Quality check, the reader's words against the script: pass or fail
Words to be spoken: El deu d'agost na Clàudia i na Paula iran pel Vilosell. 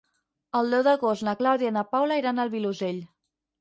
fail